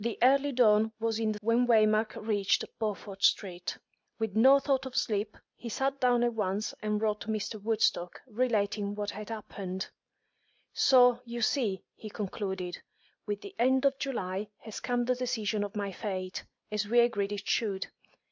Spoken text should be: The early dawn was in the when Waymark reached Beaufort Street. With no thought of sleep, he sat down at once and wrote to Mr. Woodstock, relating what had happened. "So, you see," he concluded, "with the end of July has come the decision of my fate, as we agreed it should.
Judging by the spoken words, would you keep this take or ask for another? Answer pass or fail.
pass